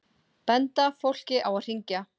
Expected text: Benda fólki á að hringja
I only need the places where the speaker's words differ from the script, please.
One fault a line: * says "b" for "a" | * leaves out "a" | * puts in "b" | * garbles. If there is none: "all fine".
all fine